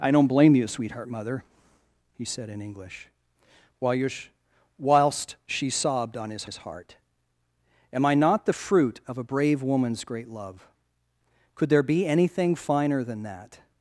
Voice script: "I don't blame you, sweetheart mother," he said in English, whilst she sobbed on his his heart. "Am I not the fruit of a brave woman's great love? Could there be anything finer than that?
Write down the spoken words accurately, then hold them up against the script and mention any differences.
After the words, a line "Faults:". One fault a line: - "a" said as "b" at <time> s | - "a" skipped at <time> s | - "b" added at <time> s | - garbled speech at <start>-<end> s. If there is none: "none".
"I don't blame you, sweetheart mother," he said in English, whilst she sobbed on his his heart. "Am I not the fruit of a brave woman's great love? Could there be anything finer than that?
Faults:
none